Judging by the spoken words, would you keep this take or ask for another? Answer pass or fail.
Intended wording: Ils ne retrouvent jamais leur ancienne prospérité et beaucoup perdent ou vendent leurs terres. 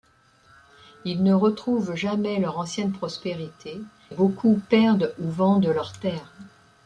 fail